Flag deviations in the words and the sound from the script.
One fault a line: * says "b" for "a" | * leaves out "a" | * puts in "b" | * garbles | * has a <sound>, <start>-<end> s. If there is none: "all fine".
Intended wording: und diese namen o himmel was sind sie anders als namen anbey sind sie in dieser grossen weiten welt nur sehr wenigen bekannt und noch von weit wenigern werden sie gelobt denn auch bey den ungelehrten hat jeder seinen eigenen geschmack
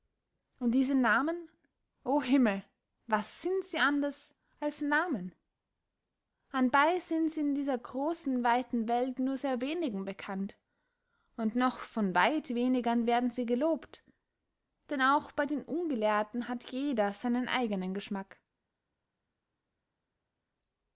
all fine